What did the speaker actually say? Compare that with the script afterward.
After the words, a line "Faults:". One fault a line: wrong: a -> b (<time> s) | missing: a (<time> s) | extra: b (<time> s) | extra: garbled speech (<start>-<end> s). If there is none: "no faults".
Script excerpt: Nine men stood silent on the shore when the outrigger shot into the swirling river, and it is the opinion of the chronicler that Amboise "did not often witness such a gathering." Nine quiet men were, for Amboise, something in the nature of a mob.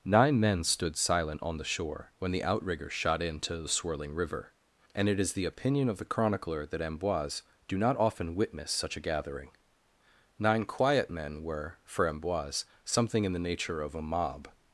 Nine men stood silent on the shore when the outrigger shot into the swirling river, and it is the opinion of the chronicler that Amboise "do not often witness such a gathering." Nine quiet men were, for Amboise, something in the nature of a mob.
Faults:
wrong: did -> do (7.7 s)